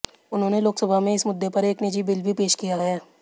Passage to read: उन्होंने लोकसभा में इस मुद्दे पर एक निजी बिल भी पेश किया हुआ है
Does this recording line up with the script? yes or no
no